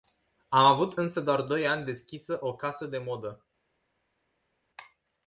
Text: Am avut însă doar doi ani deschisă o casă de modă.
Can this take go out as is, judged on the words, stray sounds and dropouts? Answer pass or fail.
pass